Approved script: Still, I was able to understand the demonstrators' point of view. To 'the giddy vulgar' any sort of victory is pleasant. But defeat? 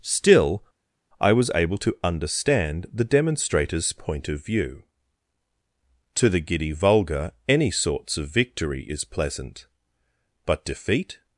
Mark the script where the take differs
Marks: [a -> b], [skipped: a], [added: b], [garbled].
Still, I was able to understand the demonstrators' point of view. To 'the giddy vulgar' any [sort -> sorts] of victory is pleasant. But defeat?